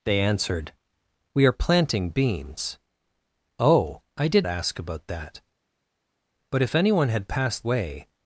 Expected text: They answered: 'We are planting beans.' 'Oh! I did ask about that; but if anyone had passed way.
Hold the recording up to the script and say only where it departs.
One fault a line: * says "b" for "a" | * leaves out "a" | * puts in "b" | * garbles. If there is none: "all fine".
all fine